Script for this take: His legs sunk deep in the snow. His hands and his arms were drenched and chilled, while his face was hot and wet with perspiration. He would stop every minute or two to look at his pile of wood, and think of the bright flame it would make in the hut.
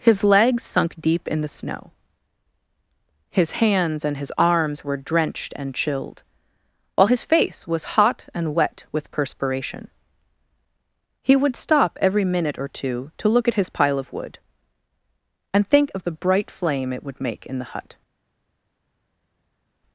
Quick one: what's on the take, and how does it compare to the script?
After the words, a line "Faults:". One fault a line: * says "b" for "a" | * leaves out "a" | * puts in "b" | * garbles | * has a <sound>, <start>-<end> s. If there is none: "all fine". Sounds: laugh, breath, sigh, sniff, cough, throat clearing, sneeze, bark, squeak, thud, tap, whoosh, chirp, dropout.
His legs sunk deep in the snow. His hands and his arms were drenched and chilled, while his face was hot and wet with perspiration. He would stop every minute or two to look at his pile of wood, and think of the bright flame it would make in the hut.
Faults:
all fine